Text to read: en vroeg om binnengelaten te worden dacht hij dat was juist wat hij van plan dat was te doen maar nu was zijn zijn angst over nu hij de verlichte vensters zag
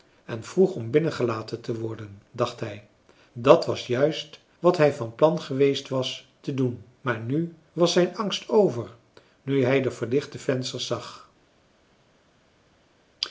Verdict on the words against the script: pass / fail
fail